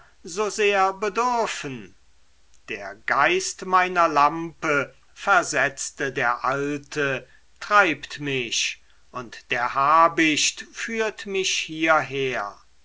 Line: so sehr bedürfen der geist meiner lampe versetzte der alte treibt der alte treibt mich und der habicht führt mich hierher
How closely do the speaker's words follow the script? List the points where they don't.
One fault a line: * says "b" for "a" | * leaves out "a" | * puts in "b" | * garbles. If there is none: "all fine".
* leaves out "der alte treibt"